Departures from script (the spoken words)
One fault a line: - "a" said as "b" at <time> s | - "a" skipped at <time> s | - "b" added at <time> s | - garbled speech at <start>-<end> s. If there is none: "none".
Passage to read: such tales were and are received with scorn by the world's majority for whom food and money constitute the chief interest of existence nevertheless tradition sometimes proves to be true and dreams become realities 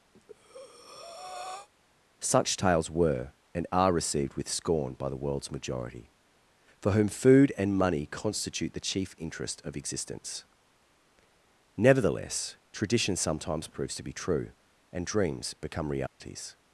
none